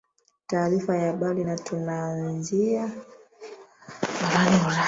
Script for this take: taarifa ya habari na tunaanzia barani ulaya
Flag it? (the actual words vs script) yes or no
no